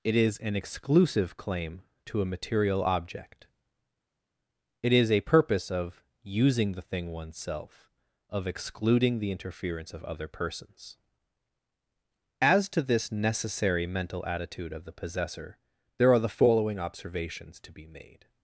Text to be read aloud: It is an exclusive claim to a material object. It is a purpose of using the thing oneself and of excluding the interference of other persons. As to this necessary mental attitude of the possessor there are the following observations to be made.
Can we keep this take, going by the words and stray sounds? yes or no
no